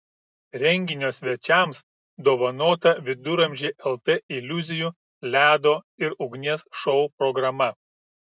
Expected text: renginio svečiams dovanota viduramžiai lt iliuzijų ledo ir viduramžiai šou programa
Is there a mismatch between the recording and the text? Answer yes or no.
yes